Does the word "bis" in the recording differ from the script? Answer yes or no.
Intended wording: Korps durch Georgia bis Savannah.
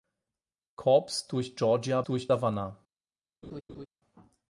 yes